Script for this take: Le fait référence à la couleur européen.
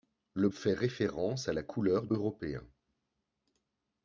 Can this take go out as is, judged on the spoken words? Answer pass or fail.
pass